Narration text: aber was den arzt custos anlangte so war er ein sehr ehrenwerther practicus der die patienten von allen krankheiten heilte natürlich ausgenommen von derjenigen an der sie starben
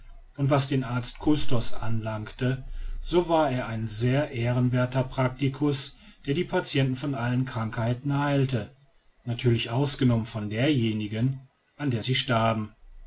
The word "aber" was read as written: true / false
false